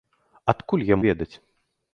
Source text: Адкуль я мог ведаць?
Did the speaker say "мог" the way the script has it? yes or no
no